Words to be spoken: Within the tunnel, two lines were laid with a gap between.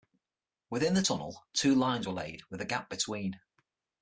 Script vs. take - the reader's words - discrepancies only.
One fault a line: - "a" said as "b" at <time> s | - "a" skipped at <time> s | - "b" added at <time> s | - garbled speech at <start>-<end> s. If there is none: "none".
none